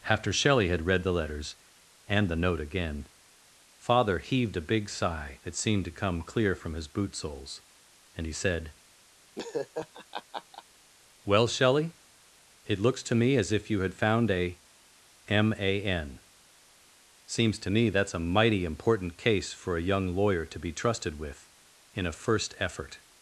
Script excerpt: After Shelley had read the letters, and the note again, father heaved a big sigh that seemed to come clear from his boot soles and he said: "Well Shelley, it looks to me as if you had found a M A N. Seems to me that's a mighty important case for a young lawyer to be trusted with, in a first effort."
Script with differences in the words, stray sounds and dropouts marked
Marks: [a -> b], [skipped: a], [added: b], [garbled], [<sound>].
After Shelley had read the letters, and the note again, father heaved a big sigh that seemed to come clear from his boot soles and he said: [laugh] "Well Shelley, it looks to me as if you had found a M A N. Seems to me that's a mighty important case for a young lawyer to be trusted with, in a first effort."